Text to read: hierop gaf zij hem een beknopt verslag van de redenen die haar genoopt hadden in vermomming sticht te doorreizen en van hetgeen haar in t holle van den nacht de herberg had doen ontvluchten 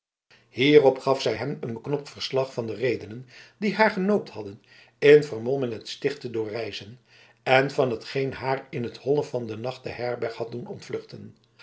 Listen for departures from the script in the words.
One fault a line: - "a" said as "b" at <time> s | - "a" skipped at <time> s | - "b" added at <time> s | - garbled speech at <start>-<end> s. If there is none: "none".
- "het" added at 5.7 s